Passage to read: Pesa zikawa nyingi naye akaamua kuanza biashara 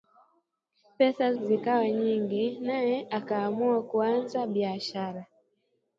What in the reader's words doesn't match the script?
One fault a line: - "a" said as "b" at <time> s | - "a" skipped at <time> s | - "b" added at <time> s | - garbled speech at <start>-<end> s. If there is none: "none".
none